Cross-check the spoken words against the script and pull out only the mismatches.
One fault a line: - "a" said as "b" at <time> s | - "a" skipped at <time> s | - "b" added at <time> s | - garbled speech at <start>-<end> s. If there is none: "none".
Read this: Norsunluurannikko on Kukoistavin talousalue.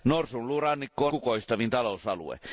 none